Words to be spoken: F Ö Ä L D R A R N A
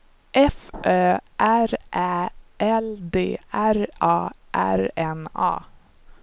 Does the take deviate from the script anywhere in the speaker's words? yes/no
yes